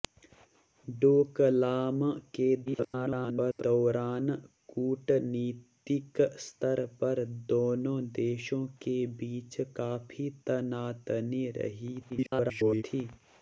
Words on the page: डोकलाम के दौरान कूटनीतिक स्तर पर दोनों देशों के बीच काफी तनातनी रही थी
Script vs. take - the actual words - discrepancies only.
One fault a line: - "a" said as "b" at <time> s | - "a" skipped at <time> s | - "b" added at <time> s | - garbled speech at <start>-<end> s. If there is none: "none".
- garbled speech at 2.7-3.6 s
- garbled speech at 12.1-12.8 s